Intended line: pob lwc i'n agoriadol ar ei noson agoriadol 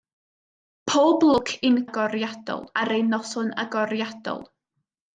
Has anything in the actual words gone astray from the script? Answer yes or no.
no